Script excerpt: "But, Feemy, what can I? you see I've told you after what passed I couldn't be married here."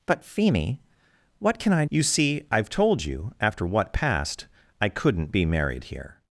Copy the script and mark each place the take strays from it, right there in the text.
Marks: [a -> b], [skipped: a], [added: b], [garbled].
"But, Feemy, what can I? you see I've told you after what passed I couldn't be married here."